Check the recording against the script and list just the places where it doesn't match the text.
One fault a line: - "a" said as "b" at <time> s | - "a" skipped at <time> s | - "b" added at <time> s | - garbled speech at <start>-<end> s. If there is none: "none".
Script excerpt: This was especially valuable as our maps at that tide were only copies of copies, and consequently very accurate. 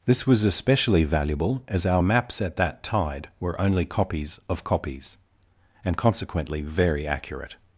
none